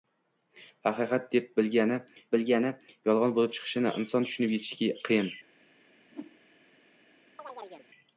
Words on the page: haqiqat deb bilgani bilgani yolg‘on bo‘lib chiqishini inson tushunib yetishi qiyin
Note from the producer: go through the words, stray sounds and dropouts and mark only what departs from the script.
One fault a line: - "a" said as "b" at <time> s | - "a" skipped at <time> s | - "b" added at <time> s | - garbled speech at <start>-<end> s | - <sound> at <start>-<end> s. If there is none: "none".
- whoosh at 6.1-6.4 s
- chirp at 7.4-7.9 s